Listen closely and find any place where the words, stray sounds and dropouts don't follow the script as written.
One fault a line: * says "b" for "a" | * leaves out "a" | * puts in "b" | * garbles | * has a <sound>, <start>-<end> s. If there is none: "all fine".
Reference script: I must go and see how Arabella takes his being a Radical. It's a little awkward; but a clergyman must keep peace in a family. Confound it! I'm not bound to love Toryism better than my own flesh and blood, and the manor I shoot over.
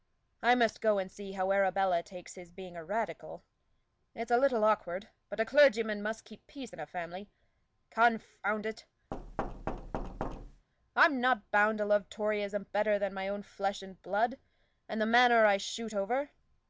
* has a thud, 9.1-10.7 s